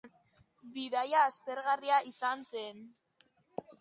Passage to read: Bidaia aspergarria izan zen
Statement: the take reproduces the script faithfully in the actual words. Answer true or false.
true